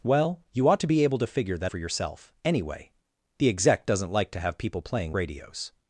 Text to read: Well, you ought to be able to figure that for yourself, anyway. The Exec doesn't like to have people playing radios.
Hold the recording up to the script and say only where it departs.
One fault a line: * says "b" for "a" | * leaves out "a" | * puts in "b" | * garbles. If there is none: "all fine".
all fine